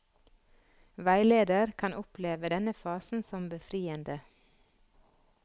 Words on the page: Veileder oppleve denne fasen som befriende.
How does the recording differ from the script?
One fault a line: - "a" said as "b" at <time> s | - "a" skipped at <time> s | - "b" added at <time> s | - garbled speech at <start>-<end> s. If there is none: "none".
- "kan" added at 1.8 s